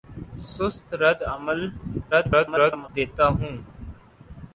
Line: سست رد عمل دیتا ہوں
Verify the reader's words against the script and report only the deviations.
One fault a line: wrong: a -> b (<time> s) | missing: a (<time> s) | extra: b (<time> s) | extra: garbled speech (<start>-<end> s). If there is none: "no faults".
extra: garbled speech (2.1-2.9 s)